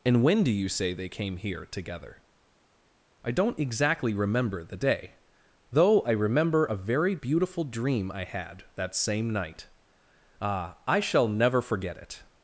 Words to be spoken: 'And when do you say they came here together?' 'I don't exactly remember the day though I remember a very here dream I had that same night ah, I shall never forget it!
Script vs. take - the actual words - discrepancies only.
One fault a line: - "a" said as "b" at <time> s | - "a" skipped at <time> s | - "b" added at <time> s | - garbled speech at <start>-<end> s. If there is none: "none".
- "here" said as "beautiful" at 7.1 s